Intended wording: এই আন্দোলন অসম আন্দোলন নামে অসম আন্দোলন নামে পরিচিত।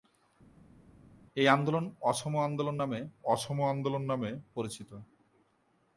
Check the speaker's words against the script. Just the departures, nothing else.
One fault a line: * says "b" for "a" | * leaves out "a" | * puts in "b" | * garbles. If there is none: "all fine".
all fine